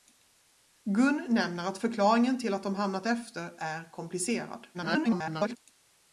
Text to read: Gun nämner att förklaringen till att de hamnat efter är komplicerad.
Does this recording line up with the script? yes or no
no